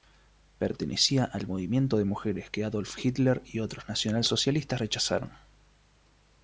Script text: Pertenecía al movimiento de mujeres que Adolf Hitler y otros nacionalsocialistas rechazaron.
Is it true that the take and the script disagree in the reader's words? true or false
false